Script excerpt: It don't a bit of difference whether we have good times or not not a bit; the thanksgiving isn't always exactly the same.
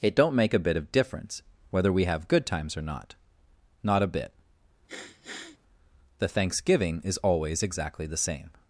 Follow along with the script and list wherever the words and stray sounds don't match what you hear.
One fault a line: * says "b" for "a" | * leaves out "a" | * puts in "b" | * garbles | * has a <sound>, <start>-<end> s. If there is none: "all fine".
* puts in "make"
* has a sniff, 4.9-5.6 s
* says "is" for "isn't"